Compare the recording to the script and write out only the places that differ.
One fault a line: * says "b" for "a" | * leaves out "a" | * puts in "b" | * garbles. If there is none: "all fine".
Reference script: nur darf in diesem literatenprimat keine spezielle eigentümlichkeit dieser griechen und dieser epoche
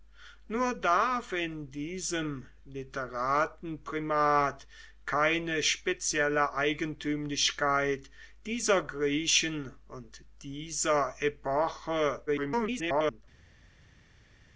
* garbles